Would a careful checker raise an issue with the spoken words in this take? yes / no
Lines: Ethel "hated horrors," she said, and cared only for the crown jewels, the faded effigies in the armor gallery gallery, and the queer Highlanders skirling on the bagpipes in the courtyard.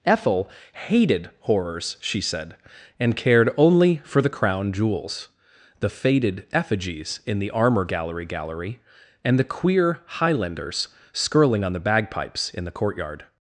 no